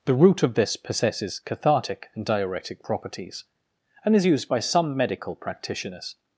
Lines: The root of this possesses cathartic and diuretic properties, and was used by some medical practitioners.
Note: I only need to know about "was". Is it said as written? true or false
false